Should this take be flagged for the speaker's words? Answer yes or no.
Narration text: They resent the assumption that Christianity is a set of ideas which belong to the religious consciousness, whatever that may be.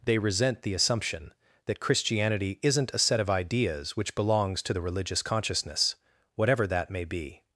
yes